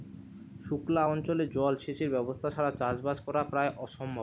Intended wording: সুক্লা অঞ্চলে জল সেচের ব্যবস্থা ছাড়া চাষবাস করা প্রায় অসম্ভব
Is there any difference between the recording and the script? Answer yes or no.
no